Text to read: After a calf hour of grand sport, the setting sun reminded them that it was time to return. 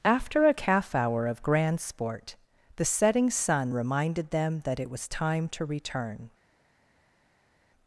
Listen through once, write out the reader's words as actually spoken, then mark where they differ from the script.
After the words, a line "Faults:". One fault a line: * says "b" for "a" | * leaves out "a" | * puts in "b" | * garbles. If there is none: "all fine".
After a calf hour of grand sport, the setting sun reminded them that it was time to return.
Faults:
all fine